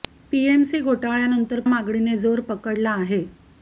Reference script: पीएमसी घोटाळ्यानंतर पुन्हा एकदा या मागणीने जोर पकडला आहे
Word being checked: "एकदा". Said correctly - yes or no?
no